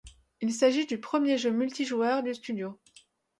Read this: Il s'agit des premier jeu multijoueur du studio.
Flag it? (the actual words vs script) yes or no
yes